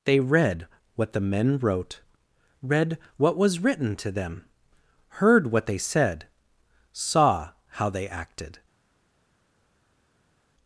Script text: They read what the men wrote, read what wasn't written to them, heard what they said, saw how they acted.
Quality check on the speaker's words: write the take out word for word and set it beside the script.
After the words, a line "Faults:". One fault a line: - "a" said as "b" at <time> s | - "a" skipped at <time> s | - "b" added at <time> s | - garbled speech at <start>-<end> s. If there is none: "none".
They read what the men wrote, read what was written to them, heard what they said, saw how they acted.
Faults:
- "wasn't" said as "was" at 3.4 s